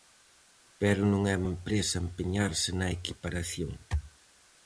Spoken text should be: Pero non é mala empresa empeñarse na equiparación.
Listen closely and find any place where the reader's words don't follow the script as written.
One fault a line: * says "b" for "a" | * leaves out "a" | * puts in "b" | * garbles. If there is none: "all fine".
* leaves out "mala"